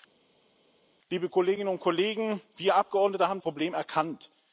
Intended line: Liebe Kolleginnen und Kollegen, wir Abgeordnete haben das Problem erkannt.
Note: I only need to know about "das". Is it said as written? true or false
false